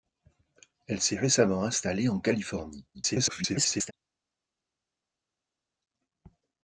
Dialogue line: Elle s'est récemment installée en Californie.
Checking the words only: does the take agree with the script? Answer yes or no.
no